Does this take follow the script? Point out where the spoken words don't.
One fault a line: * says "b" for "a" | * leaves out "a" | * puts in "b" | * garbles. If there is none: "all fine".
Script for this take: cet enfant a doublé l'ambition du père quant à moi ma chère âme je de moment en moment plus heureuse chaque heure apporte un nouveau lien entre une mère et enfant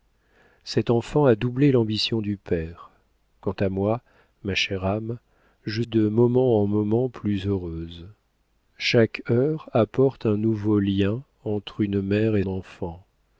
all fine